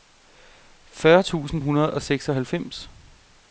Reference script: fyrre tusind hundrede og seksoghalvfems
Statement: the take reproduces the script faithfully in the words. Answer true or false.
true